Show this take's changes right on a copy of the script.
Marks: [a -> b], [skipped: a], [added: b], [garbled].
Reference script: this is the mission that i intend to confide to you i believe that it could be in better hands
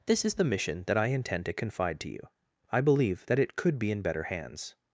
this is the mission that i intend to confide to you i believe that it could be in better hands